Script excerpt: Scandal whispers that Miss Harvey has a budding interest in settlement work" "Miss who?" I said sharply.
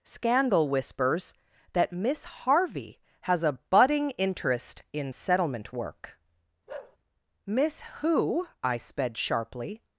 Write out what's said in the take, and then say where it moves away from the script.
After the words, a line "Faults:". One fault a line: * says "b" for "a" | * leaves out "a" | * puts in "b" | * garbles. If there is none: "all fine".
Scandal whispers that Miss Harvey has a budding interest in settlement work" "Miss who?" I sped sharply.
Faults:
* says "sped" for "said"